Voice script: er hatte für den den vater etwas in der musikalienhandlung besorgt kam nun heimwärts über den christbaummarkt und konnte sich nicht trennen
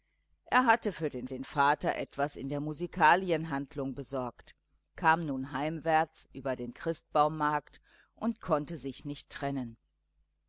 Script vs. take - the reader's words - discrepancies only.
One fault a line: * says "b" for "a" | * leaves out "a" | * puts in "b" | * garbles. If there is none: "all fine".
all fine